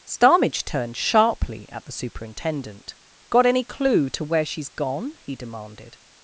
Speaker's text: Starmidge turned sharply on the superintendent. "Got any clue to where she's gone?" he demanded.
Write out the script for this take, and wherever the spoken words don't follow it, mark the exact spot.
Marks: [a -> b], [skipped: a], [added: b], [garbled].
Starmidge turned sharply [on -> at] the superintendent. "Got any clue to where she's gone?" he demanded.